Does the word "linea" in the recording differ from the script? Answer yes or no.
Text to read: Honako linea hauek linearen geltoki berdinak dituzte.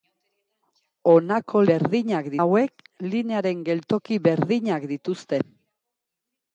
yes